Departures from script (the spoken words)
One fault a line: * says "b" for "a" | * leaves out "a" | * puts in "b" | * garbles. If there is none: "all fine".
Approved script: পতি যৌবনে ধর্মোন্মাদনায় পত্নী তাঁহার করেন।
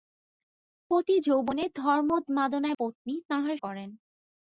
all fine